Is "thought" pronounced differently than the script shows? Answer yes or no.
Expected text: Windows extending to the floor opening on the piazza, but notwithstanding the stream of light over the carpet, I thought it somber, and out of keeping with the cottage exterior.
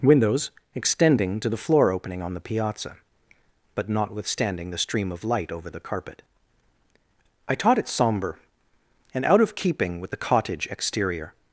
yes